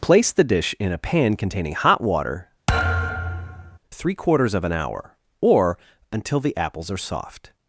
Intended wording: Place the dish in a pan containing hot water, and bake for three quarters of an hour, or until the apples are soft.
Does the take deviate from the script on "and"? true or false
true